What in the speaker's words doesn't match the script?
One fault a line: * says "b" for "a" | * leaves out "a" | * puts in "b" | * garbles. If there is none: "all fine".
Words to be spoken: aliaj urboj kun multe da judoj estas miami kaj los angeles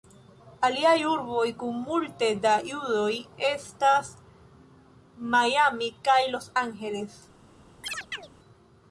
all fine